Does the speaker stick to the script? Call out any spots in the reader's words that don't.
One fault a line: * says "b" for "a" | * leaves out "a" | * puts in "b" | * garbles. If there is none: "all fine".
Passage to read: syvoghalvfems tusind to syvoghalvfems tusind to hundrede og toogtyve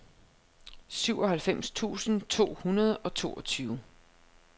* leaves out "syvoghalvfems tusind to"